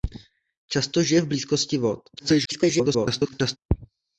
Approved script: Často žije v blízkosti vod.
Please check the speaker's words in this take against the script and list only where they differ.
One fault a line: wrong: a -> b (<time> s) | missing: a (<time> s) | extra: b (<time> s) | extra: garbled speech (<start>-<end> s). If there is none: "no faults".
extra: garbled speech (2.2-3.6 s)